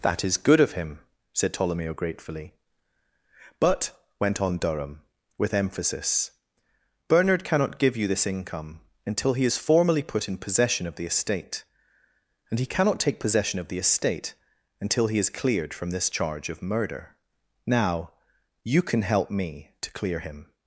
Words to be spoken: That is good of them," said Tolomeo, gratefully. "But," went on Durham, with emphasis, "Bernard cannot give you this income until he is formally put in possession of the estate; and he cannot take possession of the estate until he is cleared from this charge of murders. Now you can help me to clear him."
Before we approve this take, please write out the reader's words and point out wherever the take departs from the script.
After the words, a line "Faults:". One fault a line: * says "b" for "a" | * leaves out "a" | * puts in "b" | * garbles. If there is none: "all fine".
That is good of him," said Tolomeo, gratefully. "But," went on Durham, with emphasis, "Bernard cannot give you this income until he is formally put in possession of the estate; and he cannot take possession of the estate until he is cleared from this charge of murder. Now you can help me to clear him."
Faults:
* says "him" for "them"
* says "murder" for "murders"